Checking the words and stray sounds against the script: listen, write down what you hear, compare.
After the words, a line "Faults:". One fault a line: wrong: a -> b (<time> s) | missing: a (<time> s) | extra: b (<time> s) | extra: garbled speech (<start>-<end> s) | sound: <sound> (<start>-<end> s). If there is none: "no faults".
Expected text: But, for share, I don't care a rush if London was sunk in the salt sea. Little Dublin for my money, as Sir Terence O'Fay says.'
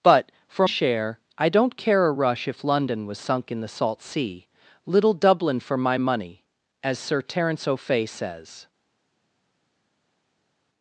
But, for share, I don't care a rush if London was sunk in the salt sea. Little Dublin for my money, as Sir Terence O'Fay says.'
Faults:
no faults